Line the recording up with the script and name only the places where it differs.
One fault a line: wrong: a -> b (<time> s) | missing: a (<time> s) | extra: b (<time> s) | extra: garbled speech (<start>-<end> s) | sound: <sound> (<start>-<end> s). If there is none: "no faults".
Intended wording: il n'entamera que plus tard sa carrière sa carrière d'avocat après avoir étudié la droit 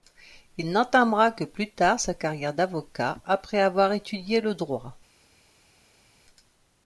missing: sa carrière (2.5 s)
wrong: la -> le (4.4 s)